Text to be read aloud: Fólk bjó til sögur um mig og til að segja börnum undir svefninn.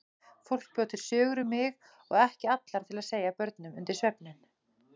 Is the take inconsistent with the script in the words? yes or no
yes